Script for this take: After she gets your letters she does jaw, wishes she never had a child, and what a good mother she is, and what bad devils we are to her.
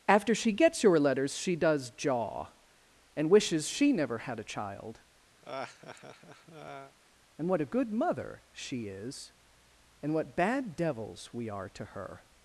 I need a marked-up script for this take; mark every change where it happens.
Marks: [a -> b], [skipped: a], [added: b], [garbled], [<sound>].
After she gets your letters she does jaw, [added: and] wishes she never had a child, [laugh] and what a good mother she is, and what bad devils we are to her.